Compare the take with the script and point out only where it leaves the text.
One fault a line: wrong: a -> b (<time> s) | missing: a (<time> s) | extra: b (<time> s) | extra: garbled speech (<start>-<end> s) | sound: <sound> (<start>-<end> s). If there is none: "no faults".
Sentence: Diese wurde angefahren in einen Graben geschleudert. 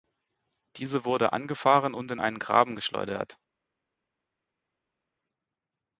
extra: und (1.9 s)